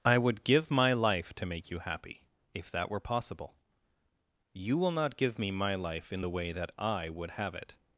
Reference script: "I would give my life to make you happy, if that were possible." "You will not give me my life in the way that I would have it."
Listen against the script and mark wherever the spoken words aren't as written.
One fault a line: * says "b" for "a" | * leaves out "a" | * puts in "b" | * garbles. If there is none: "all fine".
all fine